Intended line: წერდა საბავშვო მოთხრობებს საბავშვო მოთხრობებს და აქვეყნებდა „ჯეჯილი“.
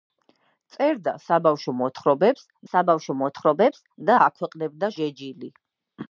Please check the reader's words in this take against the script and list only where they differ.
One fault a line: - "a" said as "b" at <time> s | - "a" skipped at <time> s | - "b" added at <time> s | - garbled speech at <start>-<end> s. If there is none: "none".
none